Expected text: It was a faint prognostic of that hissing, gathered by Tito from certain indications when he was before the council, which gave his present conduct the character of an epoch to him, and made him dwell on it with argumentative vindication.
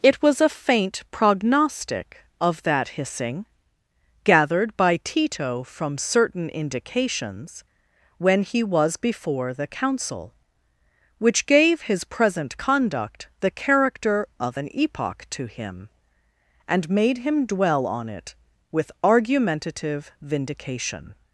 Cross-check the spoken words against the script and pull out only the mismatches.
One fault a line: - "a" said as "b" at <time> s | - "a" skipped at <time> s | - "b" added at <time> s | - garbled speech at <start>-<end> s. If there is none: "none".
none